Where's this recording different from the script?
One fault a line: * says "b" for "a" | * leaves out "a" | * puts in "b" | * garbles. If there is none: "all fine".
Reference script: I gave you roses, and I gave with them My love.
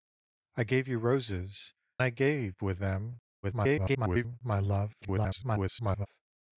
* leaves out "and"
* garbles
* garbles